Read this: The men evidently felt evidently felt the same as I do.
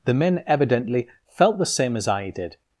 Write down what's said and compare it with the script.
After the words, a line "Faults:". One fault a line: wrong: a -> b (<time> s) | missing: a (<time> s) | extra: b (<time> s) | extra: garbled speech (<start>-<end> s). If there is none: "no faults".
The men evidently felt the same as I did.
Faults:
missing: evidently felt (1.6 s)
wrong: do -> did (2.3 s)